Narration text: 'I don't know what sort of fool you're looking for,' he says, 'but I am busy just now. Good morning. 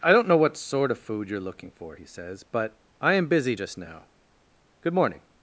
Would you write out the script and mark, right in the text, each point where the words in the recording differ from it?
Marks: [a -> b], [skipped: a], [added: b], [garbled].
'I don't know what sort of [fool -> food] you're looking for,' he says, 'but I am busy just now. Good morning.